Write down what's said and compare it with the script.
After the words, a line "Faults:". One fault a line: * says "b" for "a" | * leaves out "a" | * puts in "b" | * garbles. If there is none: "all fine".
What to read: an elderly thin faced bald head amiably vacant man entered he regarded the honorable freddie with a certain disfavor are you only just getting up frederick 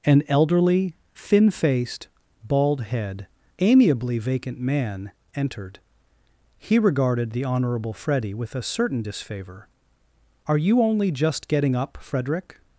an elderly thin faced bald head amiably vacant man entered he regarded the honorable freddie with a certain disfavor are you only just getting up frederick
Faults:
all fine